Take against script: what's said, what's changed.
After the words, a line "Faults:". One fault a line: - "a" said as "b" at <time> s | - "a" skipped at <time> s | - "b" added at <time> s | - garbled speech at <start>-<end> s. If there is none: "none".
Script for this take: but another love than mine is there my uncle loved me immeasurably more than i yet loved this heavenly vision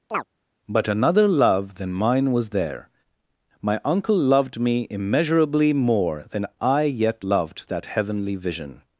but another love than mine was there my uncle loved me immeasurably more than i yet loved that heavenly vision
Faults:
- "is" said as "was" at 2.3 s
- "this" said as "that" at 7.7 s